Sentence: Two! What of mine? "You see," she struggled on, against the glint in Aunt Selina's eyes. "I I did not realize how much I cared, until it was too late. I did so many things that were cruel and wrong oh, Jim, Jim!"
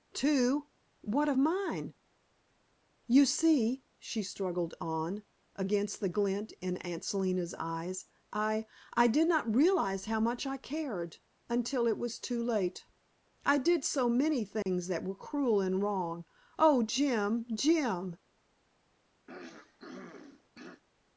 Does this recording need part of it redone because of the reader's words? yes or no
no